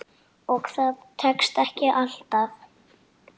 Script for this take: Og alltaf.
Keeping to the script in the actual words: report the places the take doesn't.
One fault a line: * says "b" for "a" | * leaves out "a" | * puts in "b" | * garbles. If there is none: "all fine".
* puts in "það tekst ekki"